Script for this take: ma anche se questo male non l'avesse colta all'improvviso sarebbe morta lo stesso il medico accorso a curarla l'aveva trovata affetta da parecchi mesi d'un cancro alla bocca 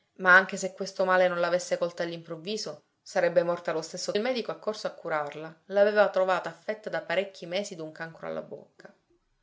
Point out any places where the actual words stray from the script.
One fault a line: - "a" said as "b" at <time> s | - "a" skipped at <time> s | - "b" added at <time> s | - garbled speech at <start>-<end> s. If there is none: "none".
none